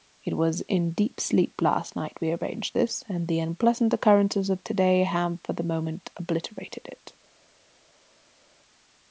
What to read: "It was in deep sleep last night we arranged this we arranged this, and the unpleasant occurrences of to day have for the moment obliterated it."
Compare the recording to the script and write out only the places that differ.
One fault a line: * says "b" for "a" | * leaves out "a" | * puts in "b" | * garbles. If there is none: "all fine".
* leaves out "we arranged this"